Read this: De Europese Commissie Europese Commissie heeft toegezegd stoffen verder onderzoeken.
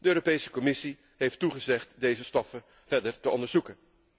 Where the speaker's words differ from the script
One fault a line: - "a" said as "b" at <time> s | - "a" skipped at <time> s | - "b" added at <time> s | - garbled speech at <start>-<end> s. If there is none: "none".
- "Europese Commissie" skipped at 1.0 s
- "deze" added at 2.0 s
- "te" added at 3.2 s